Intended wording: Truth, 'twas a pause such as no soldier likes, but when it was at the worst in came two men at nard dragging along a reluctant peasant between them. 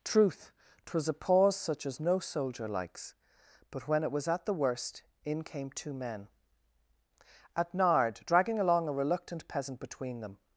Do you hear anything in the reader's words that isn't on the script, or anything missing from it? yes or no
no